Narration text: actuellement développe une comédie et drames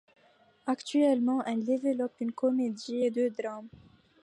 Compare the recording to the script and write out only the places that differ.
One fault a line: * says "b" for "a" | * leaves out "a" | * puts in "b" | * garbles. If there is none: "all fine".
* puts in "elle"
* puts in "deux"